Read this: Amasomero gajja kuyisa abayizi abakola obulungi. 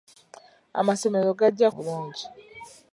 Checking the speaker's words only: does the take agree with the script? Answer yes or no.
no